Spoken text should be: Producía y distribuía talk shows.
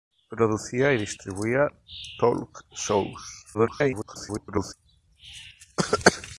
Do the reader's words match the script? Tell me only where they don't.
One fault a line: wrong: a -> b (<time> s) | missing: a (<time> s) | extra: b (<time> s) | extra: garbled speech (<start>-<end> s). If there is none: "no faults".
extra: garbled speech (3.5-4.7 s)